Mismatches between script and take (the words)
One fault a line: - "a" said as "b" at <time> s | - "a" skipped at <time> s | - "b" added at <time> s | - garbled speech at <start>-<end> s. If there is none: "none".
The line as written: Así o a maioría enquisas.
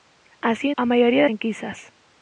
none